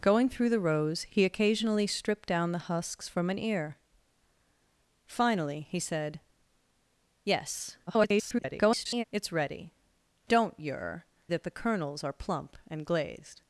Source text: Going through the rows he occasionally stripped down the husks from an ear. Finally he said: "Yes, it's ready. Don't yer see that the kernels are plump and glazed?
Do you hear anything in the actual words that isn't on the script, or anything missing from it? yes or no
yes